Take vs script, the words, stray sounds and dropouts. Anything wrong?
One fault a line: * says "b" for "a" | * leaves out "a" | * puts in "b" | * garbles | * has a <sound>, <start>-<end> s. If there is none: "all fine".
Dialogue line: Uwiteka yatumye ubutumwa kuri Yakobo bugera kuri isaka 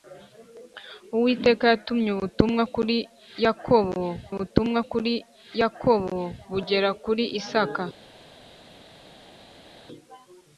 * puts in "ubutumwa kuri Yakobo"